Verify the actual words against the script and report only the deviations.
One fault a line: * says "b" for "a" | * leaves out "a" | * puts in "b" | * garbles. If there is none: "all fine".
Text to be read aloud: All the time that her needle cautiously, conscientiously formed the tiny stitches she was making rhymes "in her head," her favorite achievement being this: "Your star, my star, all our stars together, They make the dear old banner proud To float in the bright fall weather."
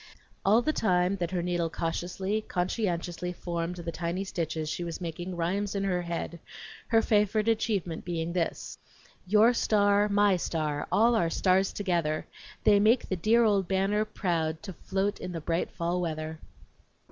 all fine